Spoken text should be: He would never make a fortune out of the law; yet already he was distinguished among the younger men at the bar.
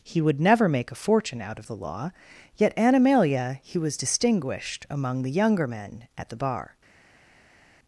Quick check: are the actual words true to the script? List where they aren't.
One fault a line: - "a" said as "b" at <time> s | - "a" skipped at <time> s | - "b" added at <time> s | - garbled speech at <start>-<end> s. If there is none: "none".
- "already" said as "animalia" at 2.8 s